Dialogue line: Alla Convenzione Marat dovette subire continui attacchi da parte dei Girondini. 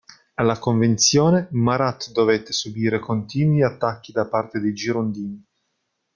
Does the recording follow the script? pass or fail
pass